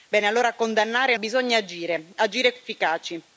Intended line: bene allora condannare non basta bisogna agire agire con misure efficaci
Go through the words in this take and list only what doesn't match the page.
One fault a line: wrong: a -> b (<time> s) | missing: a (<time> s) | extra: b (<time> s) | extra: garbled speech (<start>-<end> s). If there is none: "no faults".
missing: non basta (1.1 s)
missing: con misure (2.5 s)